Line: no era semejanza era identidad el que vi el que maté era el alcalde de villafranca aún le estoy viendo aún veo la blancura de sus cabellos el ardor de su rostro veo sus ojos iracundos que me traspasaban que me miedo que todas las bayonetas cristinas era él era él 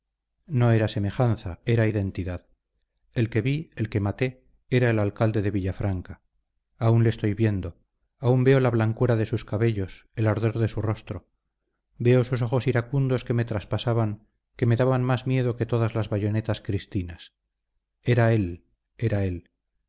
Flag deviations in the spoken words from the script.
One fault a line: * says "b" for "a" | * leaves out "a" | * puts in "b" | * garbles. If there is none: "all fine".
* puts in "daban más"